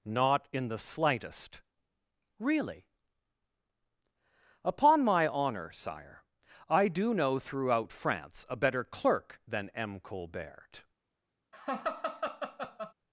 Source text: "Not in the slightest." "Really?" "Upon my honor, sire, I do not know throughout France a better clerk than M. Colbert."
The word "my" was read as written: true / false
true